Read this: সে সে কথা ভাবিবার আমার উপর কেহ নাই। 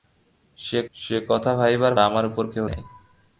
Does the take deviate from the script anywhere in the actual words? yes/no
no